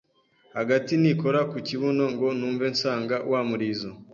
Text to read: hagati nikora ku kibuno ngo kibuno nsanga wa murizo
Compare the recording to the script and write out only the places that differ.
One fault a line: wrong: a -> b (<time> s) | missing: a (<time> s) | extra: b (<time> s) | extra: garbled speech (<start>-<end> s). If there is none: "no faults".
wrong: kibuno -> numve (2.4 s)